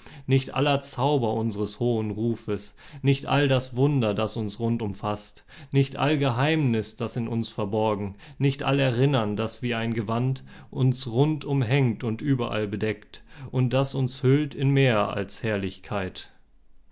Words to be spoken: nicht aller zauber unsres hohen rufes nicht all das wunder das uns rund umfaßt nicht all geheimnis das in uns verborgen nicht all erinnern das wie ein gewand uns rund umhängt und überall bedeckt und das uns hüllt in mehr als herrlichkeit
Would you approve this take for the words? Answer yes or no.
yes